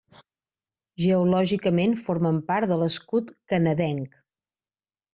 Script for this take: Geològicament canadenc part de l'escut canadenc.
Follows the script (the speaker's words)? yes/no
no